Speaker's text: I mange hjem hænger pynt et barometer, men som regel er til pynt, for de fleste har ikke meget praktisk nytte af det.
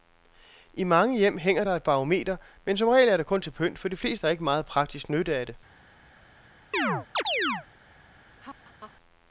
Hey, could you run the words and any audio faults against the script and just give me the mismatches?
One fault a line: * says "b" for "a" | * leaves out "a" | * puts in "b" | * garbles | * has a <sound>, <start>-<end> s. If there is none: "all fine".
* says "der" for "pynt"
* puts in "det kun"
* has a chirp, 6.7-7.7 s
* has a laugh, 8.4-8.9 s